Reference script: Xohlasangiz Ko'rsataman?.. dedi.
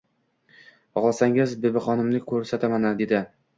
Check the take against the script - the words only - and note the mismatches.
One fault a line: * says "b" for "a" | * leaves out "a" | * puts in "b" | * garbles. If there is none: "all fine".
* puts in "Bibixonimni"